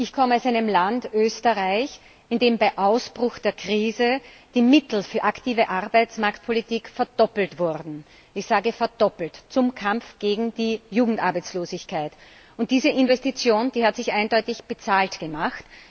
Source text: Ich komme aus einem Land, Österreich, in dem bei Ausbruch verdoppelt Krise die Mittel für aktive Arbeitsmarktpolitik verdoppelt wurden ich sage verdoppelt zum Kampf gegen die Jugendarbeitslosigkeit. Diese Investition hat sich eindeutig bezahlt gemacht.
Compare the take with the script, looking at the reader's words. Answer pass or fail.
fail